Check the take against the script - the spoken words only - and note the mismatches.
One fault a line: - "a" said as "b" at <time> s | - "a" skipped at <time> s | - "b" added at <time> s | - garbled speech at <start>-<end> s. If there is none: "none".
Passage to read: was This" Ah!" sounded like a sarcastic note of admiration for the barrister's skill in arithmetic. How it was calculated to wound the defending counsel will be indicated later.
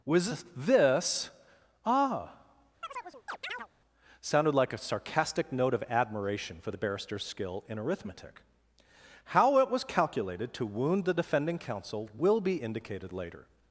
none